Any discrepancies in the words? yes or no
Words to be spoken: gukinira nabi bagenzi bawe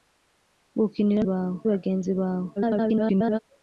yes